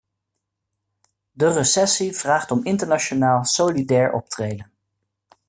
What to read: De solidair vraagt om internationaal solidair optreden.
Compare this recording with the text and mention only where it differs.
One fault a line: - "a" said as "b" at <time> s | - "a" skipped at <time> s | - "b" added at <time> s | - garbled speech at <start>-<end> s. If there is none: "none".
- "solidair" said as "recessie" at 1.5 s